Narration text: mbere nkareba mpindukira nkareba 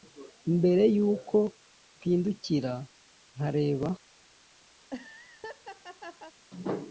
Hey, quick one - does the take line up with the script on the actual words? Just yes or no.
no